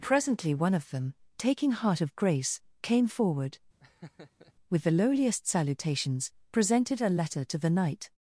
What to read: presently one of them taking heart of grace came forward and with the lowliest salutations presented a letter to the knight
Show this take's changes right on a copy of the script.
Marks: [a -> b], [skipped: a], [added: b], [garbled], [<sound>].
presently one of them taking heart of grace came forward [skipped: and] [laugh] with the lowliest salutations presented a letter to the knight